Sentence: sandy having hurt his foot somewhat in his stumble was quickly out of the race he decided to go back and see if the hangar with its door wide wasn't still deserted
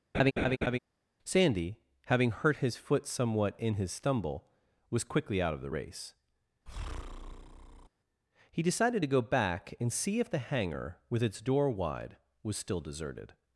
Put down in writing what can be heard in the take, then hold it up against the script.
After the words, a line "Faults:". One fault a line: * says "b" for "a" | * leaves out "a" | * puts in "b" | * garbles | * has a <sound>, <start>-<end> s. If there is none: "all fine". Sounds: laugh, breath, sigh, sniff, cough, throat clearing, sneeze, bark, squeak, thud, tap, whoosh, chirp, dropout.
sandy having hurt his foot somewhat in his stumble was quickly out of the race he decided to go back and see if the hangar with its door wide was still deserted
Faults:
* has a laugh, 0.1-0.8 s
* has a breath, 6.7-7.9 s
* says "was" for "wasn't"